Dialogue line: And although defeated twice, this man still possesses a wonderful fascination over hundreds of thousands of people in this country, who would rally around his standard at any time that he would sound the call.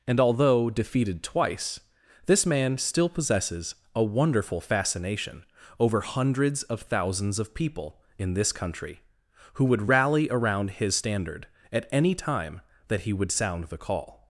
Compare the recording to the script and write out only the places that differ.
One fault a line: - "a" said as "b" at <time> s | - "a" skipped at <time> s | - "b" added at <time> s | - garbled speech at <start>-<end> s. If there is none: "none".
none